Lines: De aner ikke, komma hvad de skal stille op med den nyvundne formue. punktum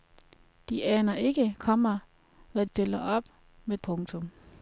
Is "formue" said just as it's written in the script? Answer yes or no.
no